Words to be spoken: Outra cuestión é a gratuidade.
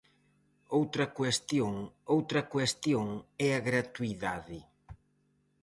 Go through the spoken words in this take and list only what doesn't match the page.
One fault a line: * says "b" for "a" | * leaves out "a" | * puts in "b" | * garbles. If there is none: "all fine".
* puts in "outra cuestión"